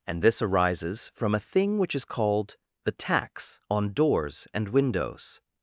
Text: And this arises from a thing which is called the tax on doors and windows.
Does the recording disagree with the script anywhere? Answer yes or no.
no